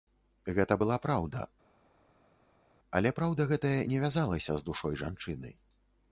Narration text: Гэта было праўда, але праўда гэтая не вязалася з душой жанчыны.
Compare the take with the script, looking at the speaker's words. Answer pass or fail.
fail